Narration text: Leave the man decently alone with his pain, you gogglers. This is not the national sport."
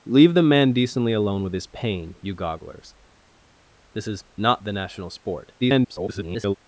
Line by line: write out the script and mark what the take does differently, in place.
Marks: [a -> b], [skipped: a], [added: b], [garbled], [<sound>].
Leave the man decently alone with his pain, you gogglers. This is not the national sport." [garbled]